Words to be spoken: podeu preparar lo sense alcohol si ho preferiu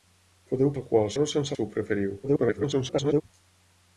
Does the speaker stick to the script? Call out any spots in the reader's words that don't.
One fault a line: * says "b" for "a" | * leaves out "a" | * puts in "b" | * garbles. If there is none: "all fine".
* says "alcohol" for "preparar"
* leaves out "alcohol"
* garbles